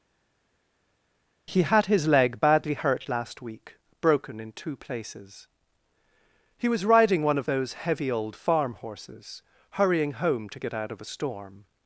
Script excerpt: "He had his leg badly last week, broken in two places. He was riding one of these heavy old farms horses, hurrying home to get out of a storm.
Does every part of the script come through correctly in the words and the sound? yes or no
no